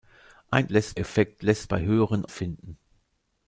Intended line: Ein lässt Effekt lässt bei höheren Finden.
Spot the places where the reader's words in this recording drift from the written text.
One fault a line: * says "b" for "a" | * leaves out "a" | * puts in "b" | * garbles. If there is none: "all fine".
all fine